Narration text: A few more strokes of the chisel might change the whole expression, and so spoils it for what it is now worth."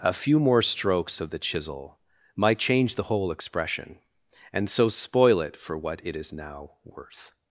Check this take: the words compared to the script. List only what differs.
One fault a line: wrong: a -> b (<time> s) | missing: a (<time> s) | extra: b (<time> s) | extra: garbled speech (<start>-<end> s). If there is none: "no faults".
wrong: spoils -> spoil (4.9 s)